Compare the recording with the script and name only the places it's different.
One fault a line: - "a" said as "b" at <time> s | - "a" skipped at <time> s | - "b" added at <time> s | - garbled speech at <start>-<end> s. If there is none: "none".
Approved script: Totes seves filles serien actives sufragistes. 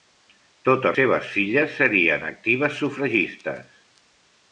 none